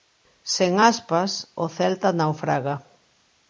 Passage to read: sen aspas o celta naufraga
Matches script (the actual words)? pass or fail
pass